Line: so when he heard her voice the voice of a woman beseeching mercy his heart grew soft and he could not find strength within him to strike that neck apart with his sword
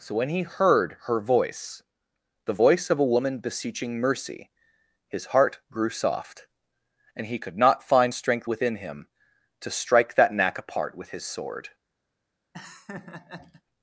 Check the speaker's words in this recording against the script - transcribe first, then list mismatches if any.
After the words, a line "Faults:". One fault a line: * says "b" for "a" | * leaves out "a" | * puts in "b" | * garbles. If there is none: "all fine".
so when he heard her voice the voice of a woman beseeching mercy his heart grew soft and he could not find strength within him to strike that knack apart with his sword
Faults:
* says "knack" for "neck"